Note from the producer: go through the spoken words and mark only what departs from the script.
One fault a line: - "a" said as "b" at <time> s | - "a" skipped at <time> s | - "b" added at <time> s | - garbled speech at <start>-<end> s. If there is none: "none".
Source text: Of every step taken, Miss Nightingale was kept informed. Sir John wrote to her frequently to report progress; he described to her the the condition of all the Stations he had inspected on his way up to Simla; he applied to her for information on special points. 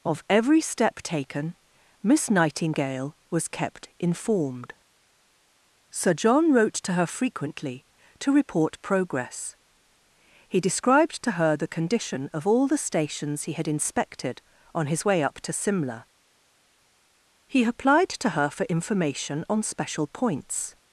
- "the" skipped at 11.8 s